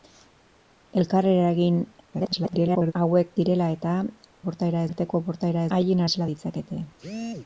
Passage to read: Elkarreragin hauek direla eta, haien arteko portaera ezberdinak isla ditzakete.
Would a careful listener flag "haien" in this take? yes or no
yes